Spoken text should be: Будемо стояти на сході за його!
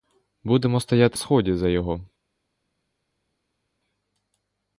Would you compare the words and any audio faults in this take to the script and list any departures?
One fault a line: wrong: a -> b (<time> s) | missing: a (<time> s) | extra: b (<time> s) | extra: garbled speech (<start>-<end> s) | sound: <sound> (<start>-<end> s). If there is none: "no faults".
missing: на (1.2 s)